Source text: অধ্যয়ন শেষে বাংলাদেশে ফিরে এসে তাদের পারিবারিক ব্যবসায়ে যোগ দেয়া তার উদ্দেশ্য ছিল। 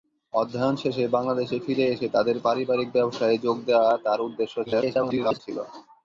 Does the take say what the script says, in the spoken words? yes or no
no